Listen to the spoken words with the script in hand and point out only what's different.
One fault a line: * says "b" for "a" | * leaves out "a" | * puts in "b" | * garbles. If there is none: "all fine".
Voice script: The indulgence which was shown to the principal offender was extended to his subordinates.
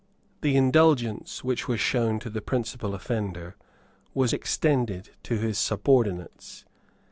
all fine